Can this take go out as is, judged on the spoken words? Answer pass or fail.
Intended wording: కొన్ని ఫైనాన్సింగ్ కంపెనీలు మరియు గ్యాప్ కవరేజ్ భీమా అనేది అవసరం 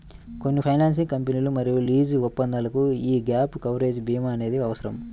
fail